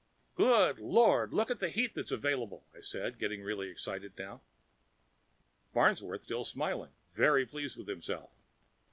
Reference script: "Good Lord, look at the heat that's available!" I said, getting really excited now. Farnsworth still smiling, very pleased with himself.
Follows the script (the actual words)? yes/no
yes